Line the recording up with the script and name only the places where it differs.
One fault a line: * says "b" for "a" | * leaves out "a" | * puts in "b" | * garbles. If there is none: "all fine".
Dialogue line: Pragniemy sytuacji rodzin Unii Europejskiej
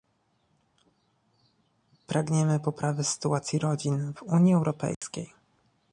* puts in "poprawy"
* puts in "w"